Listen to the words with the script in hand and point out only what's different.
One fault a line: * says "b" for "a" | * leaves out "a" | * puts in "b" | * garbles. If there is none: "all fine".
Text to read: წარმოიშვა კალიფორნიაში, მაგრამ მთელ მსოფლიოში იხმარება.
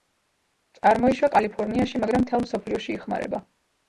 all fine